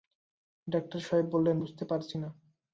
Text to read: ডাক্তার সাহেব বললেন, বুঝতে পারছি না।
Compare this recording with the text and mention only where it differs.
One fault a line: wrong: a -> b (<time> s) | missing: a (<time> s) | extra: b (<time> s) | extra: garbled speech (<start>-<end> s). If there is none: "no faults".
no faults